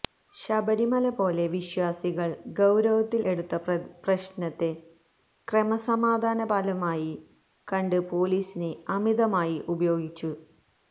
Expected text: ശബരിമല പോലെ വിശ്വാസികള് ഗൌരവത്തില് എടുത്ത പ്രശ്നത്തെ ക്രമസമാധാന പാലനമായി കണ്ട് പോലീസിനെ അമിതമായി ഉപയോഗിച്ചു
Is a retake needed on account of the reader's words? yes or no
no